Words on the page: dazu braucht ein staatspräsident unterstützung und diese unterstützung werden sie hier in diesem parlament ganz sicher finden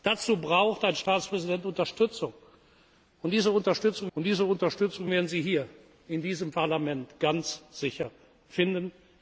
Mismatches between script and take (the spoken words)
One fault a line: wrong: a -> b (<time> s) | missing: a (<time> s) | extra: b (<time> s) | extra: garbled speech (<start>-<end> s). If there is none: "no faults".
extra: und diese unterstützung (4.1 s)